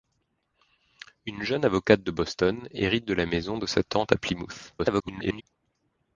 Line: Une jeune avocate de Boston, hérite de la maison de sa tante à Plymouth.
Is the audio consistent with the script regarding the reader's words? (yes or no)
no